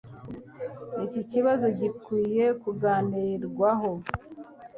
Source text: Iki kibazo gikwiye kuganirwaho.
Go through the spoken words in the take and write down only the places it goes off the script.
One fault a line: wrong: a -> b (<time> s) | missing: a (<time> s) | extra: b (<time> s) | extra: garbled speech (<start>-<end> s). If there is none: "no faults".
no faults